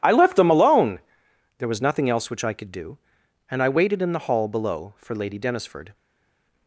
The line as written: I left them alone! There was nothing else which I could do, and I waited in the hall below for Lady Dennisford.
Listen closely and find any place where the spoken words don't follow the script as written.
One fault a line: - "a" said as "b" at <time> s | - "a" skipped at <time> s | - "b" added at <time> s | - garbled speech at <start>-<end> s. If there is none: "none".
none